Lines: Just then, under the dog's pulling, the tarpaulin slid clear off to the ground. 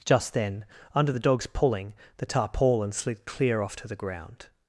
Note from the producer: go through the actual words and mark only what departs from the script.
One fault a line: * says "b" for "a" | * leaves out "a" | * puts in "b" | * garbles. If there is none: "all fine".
all fine